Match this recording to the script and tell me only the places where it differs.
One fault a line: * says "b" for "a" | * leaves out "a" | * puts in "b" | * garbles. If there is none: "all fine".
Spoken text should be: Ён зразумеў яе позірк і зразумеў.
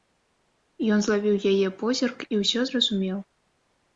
* says "злавіў" for "зразумеў"
* puts in "ўсё"